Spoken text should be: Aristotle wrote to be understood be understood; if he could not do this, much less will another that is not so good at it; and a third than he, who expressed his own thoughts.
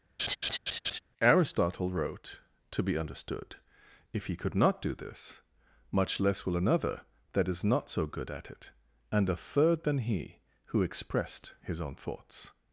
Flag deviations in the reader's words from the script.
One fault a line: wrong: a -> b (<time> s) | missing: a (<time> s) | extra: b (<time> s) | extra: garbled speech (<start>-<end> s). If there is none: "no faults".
missing: be understood (3.6 s)